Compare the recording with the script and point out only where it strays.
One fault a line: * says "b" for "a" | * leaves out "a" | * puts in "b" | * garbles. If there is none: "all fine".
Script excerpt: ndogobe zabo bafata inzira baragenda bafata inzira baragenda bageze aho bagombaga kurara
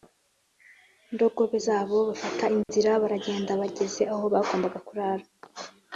* leaves out "bafata inzira baragenda"